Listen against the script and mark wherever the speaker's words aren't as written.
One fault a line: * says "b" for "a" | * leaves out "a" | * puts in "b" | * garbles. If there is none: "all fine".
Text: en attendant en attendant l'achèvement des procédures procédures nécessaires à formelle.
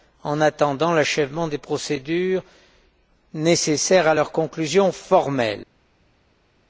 * leaves out "en attendant"
* leaves out "procédures"
* puts in "leur conclusion"